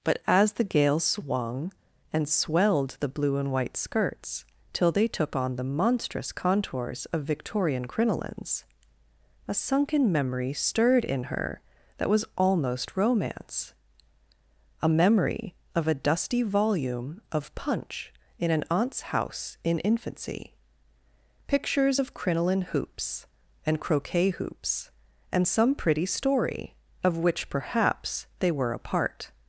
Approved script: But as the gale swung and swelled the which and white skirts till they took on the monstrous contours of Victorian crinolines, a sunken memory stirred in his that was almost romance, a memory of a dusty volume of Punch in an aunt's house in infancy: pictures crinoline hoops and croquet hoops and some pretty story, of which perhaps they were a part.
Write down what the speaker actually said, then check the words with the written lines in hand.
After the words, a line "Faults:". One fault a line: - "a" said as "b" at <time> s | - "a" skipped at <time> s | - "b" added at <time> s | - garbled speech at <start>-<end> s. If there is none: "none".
But as the gale swung and swelled the blue and white skirts till they took on the monstrous contours of Victorian crinolines, a sunken memory stirred in her that was almost romance, a memory of a dusty volume of Punch in an aunt's house in infancy: pictures of crinoline hoops and croquet hoops and some pretty story, of which perhaps they were a part.
Faults:
- "which" said as "blue" at 3.1 s
- "his" said as "her" at 11.2 s
- "of" added at 22.0 s